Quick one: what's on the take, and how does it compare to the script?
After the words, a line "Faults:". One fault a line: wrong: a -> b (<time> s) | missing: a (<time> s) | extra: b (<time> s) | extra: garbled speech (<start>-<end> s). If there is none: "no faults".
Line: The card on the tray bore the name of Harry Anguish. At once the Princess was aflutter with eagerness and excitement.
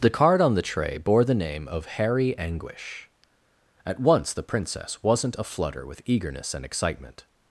The card on the tray bore the name of Harry Anguish. At once the Princess wasn't aflutter with eagerness and excitement.
Faults:
wrong: was -> wasn't (5.0 s)